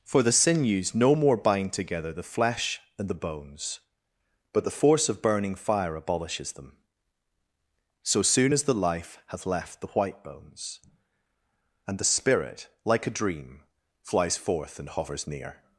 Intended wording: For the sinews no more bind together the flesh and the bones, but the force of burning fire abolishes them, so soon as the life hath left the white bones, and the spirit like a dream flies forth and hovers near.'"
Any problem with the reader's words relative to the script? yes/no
no